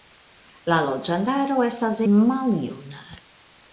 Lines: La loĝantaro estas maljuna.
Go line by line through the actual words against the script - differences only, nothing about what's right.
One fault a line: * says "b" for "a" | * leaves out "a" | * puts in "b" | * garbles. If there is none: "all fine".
all fine